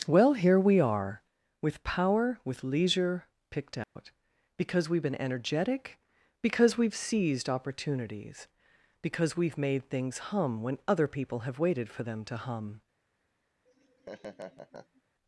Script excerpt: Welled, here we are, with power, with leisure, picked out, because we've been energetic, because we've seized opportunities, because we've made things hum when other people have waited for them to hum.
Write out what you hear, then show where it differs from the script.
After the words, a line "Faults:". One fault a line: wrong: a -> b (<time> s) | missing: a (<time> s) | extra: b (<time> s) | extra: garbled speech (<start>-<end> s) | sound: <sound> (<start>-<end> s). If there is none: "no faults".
Well, here we are, with power, with leisure, picked out, because we've been energetic, because we've seized opportunities, because we've made things hum when other people have waited for them to hum.
Faults:
wrong: Welled -> Well (0.1 s)
sound: dropout (3.8-4.0 s)
sound: laugh (13.7-15.0 s)